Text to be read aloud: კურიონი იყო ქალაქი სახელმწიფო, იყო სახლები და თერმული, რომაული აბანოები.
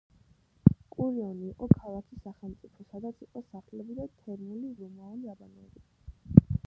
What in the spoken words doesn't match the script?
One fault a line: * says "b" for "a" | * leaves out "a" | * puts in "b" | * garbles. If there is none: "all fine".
* puts in "სადაც"